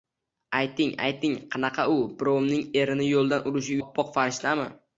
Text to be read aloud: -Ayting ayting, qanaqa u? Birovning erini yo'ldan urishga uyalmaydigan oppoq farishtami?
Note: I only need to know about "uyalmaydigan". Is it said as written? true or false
false